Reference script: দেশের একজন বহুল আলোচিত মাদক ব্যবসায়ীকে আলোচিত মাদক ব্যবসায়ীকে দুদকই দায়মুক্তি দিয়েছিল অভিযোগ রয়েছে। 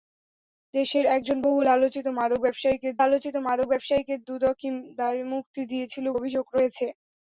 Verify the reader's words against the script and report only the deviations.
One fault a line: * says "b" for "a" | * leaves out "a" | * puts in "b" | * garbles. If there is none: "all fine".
all fine